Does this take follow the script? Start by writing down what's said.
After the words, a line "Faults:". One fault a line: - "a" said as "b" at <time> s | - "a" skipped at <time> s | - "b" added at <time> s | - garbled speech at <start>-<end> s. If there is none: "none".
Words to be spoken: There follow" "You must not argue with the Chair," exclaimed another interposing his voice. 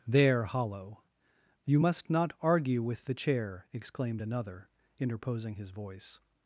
There hollow" "You must not argue with the Chair," exclaimed another interposing his voice.
Faults:
- "follow" said as "hollow" at 0.5 s